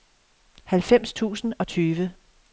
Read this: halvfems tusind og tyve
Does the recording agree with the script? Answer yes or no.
yes